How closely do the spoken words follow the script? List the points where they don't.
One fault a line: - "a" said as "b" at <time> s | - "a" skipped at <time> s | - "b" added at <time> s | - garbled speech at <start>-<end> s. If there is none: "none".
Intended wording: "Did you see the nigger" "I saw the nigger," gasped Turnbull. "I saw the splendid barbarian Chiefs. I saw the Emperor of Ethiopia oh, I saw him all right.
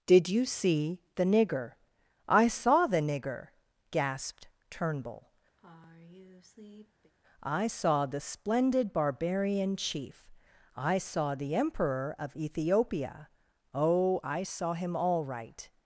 - "Chiefs" said as "Chief" at 9.8 s